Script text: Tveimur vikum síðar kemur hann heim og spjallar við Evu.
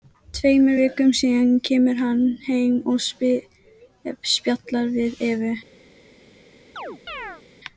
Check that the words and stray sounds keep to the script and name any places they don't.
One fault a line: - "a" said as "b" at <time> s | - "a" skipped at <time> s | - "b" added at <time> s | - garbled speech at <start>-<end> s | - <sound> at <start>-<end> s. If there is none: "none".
- chirp at 6.8-7.4 s